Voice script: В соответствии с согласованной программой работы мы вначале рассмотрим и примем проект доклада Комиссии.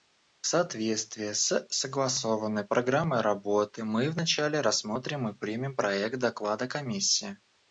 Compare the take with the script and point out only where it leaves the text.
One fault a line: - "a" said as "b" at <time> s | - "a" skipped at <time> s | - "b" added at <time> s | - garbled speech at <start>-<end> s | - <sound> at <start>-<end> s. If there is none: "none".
none